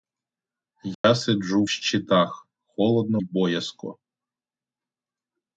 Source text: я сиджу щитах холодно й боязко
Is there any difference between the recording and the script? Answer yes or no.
no